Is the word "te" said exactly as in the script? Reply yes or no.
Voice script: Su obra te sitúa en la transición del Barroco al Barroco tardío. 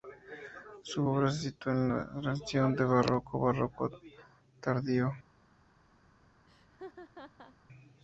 no